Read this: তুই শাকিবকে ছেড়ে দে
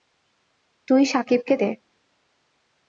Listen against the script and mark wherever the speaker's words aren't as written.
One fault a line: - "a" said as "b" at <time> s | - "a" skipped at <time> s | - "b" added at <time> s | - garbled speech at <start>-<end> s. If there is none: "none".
- "ছেড়ে" skipped at 1.6 s